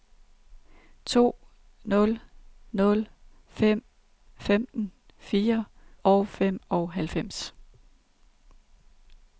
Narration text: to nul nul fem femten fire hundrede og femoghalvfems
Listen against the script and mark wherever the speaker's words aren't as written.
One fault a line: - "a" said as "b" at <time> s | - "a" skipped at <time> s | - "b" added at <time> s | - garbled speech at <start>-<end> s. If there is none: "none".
- "hundrede" skipped at 5.7 s